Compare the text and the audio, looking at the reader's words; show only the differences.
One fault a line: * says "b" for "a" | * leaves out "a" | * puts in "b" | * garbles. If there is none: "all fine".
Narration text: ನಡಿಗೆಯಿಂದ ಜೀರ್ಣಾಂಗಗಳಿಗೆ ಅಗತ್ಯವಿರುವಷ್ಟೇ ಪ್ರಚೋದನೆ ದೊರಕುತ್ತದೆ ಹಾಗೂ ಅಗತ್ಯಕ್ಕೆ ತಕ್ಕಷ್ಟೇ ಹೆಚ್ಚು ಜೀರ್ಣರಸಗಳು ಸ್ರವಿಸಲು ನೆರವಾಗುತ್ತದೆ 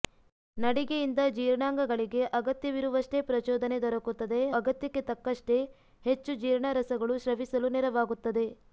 * leaves out "ಹಾಗೂ"